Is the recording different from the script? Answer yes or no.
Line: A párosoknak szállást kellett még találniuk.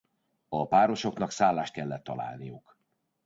yes